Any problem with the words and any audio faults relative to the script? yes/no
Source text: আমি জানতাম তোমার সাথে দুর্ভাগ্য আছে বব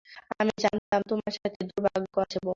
yes